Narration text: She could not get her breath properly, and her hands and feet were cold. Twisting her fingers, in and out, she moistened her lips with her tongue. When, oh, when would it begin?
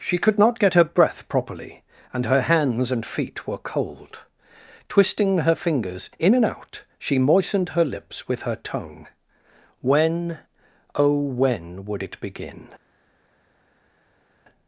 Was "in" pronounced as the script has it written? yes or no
yes